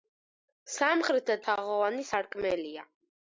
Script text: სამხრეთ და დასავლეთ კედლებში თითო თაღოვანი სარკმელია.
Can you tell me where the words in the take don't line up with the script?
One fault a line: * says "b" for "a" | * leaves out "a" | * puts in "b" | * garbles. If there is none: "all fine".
* leaves out "დასავლეთ კედლებში თითო"